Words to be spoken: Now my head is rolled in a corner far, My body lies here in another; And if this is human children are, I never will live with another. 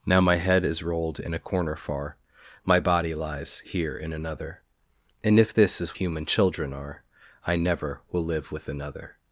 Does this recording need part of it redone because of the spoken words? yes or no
no